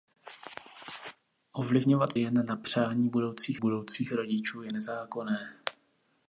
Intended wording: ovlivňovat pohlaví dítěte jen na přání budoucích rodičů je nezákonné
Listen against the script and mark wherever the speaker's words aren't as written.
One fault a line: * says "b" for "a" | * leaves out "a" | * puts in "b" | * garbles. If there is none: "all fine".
* leaves out "pohlaví dítěte"
* puts in "budoucích"